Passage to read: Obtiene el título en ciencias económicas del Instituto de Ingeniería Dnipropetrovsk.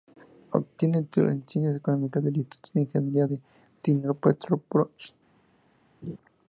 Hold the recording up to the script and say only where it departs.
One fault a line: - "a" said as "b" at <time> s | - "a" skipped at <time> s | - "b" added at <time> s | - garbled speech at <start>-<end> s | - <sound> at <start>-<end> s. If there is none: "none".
- "de" added at 3.2 s
- laugh at 6.0-6.2 s